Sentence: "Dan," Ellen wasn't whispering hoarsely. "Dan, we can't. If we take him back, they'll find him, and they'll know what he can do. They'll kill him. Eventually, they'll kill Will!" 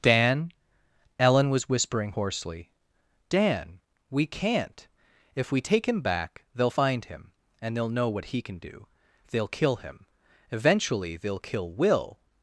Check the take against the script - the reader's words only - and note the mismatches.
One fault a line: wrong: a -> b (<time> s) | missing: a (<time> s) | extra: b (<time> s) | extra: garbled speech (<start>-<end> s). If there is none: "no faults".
wrong: wasn't -> was (1.5 s)